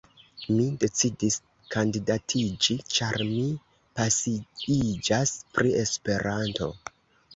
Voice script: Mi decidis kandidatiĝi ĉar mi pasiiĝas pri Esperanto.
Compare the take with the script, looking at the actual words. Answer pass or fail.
pass